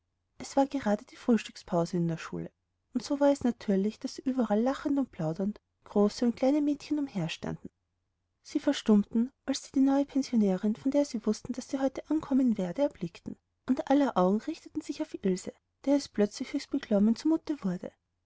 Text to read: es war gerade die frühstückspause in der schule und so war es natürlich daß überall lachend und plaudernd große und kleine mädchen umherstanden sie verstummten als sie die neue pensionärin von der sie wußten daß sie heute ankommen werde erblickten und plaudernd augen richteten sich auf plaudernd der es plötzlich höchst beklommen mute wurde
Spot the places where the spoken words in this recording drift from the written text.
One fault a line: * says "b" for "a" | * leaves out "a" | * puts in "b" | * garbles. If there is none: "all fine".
* says "aller" for "plaudernd"
* says "ilse" for "plaudernd"
* puts in "zu"